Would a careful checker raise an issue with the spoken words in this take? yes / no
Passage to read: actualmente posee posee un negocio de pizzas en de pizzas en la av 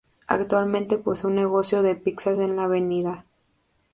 yes